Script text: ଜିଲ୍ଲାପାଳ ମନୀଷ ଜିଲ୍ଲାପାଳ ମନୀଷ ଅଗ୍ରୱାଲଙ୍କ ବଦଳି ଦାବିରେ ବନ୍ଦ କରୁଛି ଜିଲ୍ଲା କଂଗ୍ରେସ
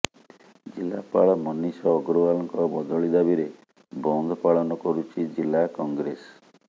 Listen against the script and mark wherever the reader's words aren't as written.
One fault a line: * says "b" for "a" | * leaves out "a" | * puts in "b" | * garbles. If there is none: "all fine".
* leaves out "ଜିଲ୍ଲାପାଳ ମନୀଷ"
* puts in "ପାଳନ"